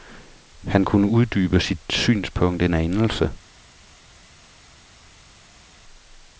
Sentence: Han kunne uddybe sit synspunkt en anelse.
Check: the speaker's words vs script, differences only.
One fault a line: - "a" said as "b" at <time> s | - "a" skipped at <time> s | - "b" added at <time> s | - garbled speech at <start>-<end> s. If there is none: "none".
none